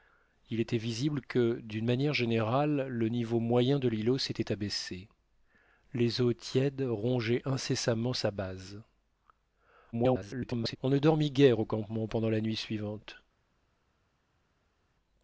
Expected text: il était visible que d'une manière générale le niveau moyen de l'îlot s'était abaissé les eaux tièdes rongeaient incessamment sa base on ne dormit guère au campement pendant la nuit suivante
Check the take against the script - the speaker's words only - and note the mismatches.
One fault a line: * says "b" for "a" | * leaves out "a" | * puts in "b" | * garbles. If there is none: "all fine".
* garbles